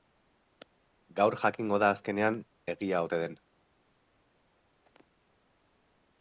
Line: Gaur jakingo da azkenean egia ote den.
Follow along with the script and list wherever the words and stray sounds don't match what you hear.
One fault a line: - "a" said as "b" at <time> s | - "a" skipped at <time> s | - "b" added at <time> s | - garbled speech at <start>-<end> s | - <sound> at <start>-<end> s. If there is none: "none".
none